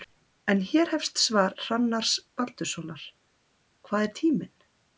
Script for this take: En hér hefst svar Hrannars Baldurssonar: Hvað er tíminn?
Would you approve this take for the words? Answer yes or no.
yes